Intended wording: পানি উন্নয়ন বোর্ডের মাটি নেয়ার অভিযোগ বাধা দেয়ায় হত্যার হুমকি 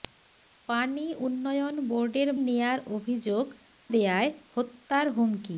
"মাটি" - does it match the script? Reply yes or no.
no